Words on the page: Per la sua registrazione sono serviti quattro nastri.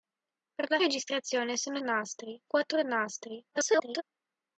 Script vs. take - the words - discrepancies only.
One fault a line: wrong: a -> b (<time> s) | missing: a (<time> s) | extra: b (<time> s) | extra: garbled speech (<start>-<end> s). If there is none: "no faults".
missing: sua (0.8 s)
wrong: serviti -> nastri (1.8 s)
extra: garbled speech (3.5-4.0 s)